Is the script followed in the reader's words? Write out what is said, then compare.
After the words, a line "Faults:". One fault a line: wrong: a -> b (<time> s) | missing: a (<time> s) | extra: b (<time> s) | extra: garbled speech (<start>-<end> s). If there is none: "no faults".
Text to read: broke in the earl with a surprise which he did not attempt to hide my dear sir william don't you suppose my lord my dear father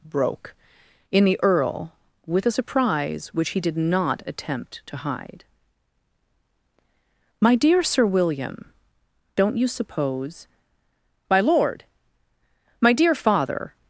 broke in the earl with a surprise which he did not attempt to hide my dear sir william don't you suppose my lord my dear father
Faults:
no faults